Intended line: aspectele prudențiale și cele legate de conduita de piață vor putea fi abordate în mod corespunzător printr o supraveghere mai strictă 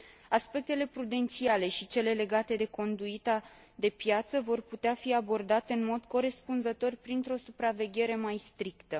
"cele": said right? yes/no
yes